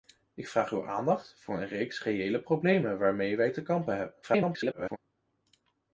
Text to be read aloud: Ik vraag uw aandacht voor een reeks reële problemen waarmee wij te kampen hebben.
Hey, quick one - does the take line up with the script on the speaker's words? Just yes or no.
no